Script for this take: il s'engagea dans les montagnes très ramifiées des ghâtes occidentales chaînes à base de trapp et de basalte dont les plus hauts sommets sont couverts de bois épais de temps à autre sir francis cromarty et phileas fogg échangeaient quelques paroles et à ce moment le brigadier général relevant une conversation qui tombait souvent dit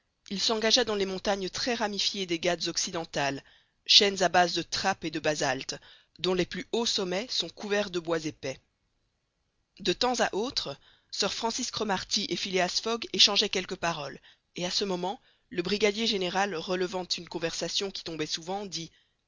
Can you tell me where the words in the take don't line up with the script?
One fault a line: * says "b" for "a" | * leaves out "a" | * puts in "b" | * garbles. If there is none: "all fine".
all fine